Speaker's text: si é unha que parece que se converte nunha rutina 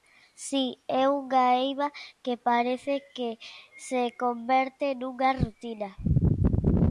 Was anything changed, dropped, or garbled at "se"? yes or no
no